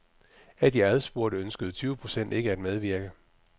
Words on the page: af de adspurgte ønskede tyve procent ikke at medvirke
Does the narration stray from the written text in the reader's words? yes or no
no